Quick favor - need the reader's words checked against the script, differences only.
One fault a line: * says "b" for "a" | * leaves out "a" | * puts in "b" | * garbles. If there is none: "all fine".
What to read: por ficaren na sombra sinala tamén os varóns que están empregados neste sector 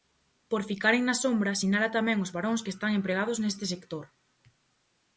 all fine